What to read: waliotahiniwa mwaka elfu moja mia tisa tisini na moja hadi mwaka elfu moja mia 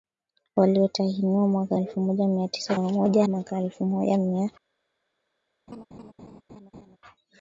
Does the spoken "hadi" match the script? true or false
false